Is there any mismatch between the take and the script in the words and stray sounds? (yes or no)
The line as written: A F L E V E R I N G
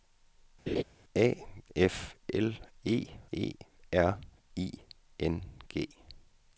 yes